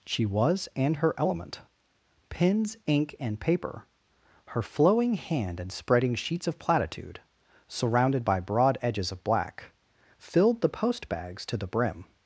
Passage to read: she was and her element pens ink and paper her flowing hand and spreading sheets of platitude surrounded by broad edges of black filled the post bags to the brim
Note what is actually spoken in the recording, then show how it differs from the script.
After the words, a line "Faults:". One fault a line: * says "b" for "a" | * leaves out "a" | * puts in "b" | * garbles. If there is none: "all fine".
she was and her element pens ink and paper her flowing hand and spreading sheets of platitude surrounded by broad edges of black filled the post bags to the brim
Faults:
all fine